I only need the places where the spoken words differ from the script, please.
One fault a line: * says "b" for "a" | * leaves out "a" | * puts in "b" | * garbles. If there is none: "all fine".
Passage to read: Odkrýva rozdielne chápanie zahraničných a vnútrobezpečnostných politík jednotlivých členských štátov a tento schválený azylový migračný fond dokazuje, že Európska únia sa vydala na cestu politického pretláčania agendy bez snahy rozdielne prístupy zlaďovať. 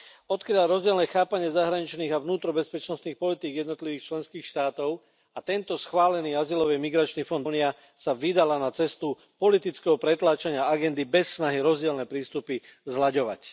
* leaves out "dokazuje že Európska"